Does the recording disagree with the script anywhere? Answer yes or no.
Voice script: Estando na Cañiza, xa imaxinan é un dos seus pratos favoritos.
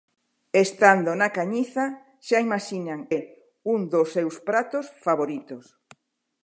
no